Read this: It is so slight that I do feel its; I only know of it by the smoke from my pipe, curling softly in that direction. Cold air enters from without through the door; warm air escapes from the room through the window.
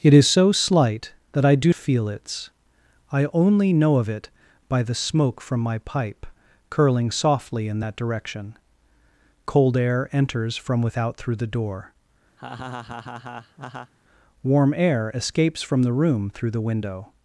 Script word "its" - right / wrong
right